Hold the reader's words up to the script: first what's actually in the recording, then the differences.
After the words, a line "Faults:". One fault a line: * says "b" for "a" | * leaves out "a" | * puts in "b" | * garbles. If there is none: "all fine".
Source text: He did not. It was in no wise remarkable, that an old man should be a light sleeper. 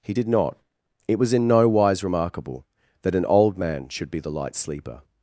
He did not. It was in no wise remarkable, that an old man should be the light sleeper.
Faults:
* says "the" for "a"